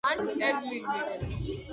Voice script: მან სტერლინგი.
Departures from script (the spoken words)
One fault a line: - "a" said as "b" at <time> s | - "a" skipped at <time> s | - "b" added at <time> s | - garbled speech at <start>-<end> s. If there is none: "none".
none